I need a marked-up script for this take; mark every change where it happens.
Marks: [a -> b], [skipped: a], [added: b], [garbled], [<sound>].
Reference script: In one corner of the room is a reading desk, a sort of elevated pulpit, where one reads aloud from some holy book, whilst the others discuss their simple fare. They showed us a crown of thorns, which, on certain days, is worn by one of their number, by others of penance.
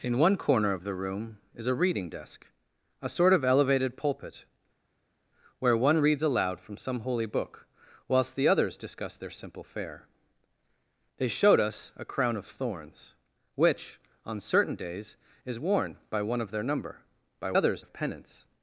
In one corner of the room is a reading desk, a sort of elevated pulpit, where one reads aloud from some holy book, whilst the others discuss their simple fare. They showed us a crown of thorns, which, on certain days, is worn by one of their number, by others of penance.